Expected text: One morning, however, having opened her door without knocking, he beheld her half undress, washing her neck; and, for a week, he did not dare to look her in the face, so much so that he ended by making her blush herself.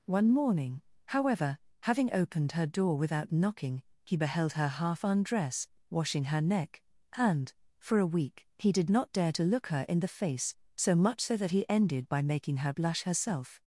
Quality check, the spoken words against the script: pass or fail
pass